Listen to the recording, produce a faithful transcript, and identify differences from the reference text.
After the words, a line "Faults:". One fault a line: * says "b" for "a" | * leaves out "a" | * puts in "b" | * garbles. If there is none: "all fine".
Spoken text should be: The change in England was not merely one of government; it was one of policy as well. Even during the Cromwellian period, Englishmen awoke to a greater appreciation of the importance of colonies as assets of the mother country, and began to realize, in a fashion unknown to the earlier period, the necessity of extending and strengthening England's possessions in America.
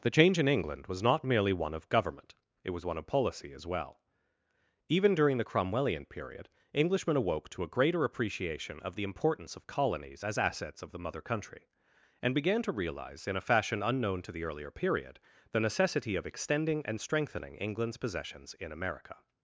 The change in England was not merely one of government; it was one of policy as well. Even during the Cromwellian period, Englishmen awoke to a greater appreciation of the importance of colonies as assets of the mother country, and began to realize, in a fashion unknown to the earlier period, the necessity of extending and strengthening England's possessions in America.
Faults:
all fine